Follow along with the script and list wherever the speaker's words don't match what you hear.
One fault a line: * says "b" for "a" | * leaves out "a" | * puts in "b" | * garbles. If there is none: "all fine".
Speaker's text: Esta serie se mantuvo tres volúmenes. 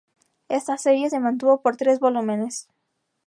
* puts in "por"